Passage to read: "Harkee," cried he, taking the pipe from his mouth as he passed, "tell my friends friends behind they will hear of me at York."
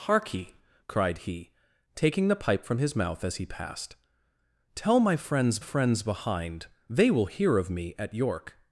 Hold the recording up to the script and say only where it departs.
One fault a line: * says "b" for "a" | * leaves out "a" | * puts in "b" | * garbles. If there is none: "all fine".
all fine